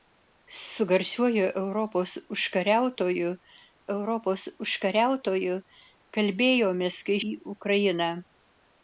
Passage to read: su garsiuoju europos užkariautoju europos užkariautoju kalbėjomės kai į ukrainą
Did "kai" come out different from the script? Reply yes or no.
no